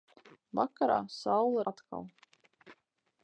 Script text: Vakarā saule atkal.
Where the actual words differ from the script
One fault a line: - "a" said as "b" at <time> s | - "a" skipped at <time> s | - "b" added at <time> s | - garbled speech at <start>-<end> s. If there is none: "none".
none